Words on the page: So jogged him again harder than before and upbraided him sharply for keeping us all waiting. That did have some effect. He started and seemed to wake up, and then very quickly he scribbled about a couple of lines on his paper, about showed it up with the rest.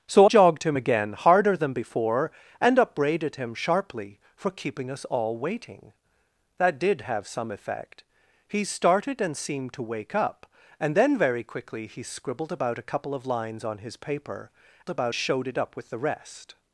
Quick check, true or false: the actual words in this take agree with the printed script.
true